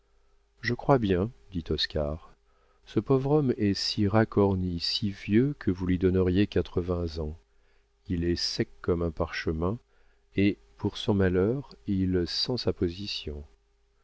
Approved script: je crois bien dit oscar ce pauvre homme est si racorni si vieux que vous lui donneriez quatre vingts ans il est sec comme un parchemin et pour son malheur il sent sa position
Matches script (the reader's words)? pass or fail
pass